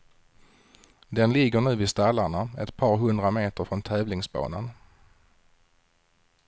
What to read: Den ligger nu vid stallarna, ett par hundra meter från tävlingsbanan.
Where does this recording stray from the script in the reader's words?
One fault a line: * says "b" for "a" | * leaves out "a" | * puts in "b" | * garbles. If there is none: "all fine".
all fine